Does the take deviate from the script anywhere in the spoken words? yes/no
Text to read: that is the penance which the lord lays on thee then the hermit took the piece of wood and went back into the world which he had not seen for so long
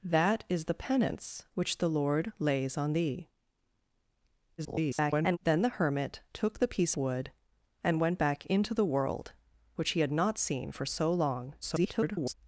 yes